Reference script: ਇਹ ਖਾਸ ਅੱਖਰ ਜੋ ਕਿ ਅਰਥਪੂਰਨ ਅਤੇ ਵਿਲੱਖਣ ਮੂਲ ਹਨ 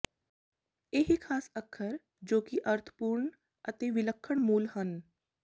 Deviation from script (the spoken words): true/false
false